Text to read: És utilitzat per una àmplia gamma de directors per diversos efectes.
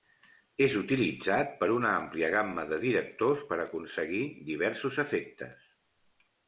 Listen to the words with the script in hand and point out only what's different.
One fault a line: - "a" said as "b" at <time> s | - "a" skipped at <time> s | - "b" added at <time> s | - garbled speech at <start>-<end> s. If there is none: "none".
- "aconseguir" added at 3.7 s